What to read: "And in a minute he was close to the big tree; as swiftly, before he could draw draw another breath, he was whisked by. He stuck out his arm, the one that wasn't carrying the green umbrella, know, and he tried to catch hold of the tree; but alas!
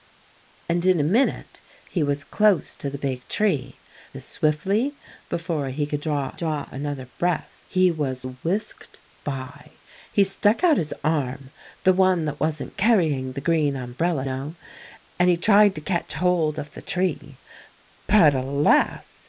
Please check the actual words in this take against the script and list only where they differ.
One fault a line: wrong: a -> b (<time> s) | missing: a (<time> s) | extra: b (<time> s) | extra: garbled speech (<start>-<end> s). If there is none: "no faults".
no faults